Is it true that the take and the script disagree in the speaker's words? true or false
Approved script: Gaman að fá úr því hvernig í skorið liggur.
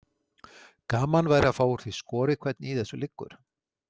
true